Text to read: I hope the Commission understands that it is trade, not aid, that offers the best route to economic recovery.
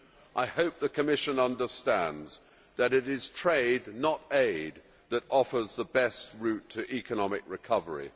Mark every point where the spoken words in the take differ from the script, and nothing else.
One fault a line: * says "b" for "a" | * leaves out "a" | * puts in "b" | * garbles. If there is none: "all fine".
all fine